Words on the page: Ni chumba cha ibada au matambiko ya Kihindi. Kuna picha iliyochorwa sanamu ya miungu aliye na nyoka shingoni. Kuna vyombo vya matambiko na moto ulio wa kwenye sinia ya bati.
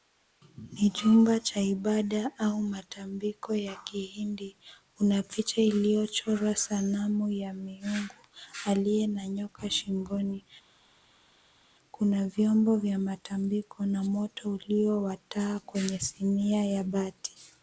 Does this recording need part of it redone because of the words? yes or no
yes